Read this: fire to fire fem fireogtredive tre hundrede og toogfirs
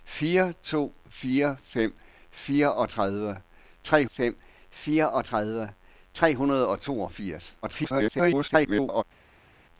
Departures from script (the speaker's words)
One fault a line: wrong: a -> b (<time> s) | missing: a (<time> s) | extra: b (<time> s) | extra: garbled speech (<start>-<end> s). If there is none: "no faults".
extra: fem fireogtredive tre (4.1 s)
extra: garbled speech (7.6-9.0 s)